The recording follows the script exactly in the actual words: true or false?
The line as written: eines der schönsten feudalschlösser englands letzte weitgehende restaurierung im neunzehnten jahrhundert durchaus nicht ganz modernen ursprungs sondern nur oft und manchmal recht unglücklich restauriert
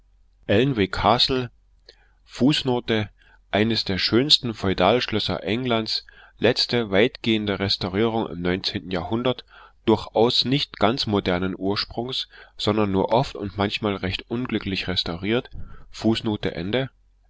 true